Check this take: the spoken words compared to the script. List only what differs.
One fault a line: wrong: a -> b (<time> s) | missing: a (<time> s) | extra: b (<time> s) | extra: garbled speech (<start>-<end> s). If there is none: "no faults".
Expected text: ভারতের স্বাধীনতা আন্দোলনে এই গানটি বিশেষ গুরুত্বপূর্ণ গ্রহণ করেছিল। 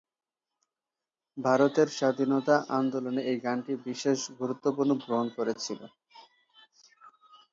no faults